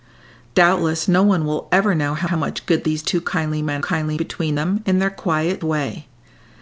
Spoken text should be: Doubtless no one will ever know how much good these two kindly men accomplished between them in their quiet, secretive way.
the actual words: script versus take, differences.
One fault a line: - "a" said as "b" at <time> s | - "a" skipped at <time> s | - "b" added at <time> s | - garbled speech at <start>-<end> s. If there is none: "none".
- "how" added at 2.2 s
- "accomplished" said as "kindly" at 3.8 s
- "secretive" skipped at 5.6 s